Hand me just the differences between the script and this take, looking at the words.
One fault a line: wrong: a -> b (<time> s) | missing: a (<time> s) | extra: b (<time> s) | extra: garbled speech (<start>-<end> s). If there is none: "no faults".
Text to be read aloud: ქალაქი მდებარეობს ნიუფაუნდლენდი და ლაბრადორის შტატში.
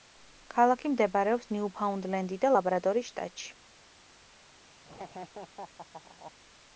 no faults